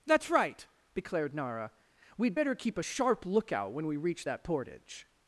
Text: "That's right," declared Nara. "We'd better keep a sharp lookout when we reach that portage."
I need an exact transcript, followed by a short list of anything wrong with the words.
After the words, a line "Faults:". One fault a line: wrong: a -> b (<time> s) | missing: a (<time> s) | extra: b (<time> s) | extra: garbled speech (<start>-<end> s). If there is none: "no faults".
"That's right," declared Nara. "We'd better keep a sharp lookout when we reach that portage."
Faults:
no faults